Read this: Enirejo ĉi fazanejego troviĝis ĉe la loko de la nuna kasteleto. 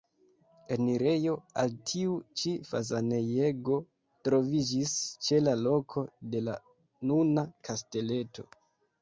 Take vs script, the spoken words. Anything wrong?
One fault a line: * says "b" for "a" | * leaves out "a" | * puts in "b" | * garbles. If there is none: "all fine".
* puts in "al tiu"